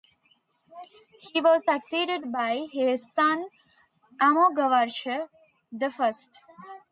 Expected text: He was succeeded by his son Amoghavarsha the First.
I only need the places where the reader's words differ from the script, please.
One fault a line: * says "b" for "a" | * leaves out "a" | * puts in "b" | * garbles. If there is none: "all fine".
all fine